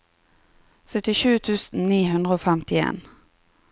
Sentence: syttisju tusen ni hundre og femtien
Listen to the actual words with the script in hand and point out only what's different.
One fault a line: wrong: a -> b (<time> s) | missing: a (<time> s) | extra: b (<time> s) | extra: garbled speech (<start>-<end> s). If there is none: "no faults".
no faults